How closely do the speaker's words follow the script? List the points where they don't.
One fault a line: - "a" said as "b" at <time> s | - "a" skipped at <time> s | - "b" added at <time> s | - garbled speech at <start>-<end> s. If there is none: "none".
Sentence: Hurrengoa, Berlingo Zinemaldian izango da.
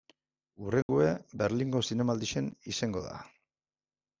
none